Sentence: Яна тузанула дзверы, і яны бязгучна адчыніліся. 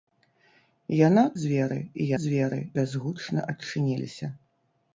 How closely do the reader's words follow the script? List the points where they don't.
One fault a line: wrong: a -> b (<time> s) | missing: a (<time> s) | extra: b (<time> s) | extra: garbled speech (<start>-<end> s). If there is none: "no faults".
missing: тузанула (1.2 s)
wrong: яны -> дзверы (2.2 s)